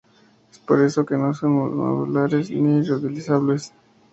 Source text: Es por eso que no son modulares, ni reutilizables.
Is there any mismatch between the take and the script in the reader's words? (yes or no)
no